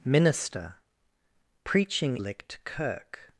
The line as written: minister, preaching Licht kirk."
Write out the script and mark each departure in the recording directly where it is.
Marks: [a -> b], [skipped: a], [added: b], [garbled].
minister, preaching Licht kirk."